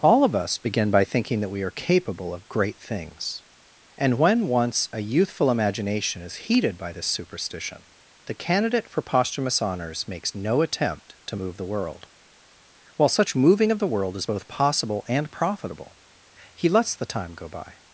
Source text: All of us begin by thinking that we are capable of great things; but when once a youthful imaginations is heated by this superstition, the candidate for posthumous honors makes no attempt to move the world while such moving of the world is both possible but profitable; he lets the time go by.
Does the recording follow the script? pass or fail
fail